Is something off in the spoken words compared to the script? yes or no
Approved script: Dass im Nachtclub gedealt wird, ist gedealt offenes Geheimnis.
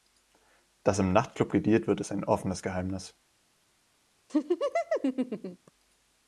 yes